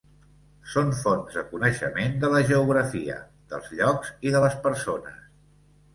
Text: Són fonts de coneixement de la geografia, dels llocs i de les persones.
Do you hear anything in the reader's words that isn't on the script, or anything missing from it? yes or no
no